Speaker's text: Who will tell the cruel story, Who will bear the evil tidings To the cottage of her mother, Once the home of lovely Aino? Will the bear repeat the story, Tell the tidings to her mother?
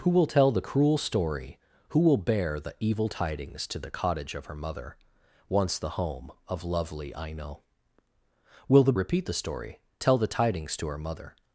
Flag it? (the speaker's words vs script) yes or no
yes